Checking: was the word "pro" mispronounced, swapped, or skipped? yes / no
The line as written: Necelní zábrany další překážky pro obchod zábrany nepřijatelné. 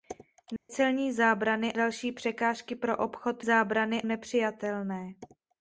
no